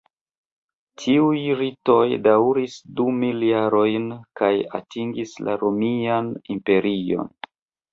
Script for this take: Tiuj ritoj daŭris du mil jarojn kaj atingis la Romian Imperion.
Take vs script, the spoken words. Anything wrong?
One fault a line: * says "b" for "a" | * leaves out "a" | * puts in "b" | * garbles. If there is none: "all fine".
all fine